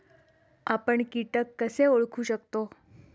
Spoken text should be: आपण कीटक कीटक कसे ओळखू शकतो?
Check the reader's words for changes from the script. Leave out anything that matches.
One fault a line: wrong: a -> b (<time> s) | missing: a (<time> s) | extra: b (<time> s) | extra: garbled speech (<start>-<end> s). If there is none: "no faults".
missing: कीटक (1.5 s)